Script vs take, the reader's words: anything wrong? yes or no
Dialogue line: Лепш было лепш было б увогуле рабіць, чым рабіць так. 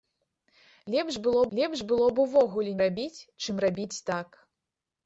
no